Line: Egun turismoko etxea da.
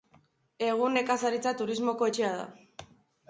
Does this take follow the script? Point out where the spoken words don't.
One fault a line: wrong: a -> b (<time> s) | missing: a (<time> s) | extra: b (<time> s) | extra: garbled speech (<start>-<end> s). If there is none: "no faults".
extra: nekazaritza (1.0 s)